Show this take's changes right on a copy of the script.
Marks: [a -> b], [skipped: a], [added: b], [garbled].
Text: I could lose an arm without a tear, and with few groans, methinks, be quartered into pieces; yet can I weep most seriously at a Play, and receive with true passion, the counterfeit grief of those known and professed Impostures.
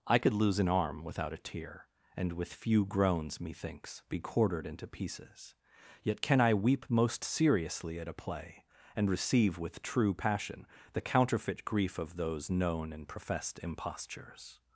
I could lose an arm without a tear, and with few groans, methinks, be quartered into pieces; yet can I weep most seriously at a Play, and receive with true passion, the counterfeit grief of those known and professed Impostures.